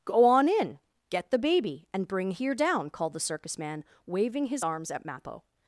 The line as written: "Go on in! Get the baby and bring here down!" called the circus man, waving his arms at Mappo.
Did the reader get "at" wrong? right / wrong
right